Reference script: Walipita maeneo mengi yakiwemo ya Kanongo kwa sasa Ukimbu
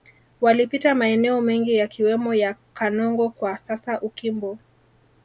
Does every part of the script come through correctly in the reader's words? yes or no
yes